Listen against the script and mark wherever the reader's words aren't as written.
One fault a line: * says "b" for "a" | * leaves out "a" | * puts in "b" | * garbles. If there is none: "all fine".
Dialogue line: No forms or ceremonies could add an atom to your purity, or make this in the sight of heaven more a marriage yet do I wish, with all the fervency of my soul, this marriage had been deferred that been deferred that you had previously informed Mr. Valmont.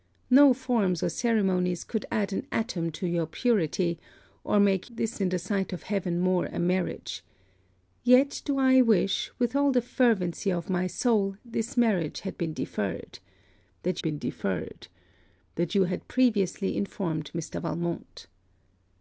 all fine